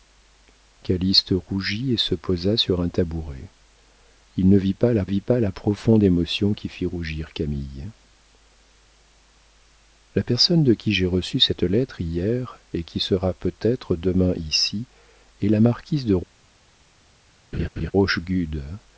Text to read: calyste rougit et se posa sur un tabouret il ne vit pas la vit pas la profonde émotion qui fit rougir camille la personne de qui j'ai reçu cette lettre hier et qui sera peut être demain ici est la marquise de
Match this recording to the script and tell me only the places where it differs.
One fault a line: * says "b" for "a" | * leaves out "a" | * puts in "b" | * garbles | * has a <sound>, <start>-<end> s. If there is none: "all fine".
* has a laugh, 17.5-17.9 s